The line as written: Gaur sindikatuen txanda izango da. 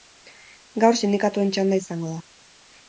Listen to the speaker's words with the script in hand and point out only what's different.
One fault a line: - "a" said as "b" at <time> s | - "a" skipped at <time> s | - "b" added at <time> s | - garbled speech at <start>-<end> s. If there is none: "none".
none